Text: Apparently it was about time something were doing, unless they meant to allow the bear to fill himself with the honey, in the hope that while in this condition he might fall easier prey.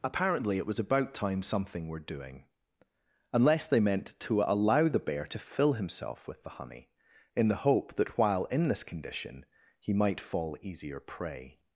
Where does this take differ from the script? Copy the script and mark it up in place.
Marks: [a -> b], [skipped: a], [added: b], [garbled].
Apparently it was about time something were doing, unless they meant to allow the bear to fill himself with the honey, in the hope that while in this condition he might fall easier prey.